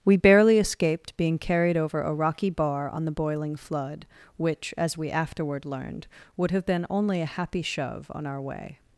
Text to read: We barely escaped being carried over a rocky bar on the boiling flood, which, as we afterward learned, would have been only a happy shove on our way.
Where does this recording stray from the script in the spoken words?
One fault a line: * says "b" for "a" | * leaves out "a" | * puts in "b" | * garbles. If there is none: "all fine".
all fine